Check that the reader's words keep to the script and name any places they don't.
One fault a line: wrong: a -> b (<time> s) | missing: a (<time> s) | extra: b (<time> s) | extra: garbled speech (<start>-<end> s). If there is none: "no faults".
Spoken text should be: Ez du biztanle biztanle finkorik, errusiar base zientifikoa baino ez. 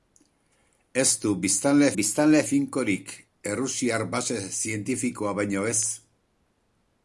no faults